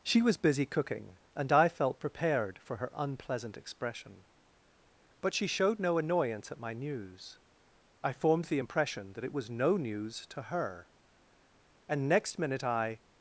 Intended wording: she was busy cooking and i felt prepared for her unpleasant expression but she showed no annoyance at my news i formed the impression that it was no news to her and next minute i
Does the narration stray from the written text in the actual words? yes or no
no